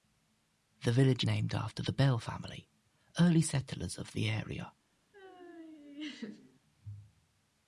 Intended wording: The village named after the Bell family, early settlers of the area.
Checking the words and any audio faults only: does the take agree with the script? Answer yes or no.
no